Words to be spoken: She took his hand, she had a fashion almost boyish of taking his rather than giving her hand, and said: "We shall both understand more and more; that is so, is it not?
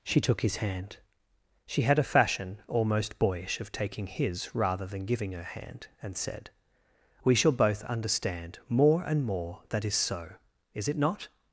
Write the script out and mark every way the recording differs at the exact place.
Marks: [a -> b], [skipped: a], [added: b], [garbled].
She took his hand, she had a fashion almost boyish of taking his rather than giving her hand, and said: "We shall both understand more and more; that is so, is it not?